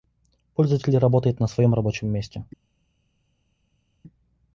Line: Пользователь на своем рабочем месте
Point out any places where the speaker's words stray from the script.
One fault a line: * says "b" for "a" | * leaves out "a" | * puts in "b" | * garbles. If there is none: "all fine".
* puts in "работает"